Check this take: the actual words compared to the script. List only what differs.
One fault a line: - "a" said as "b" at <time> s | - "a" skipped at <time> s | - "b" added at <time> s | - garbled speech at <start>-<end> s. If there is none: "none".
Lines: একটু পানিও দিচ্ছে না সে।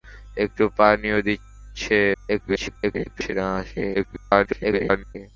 - garbled speech at 2.1-3.3 s
- garbled speech at 3.9-5.2 s